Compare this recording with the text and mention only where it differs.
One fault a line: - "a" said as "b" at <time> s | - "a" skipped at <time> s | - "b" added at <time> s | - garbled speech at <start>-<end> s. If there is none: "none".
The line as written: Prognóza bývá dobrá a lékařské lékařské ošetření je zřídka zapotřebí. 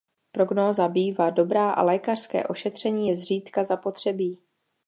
- "lékařské" skipped at 2.5 s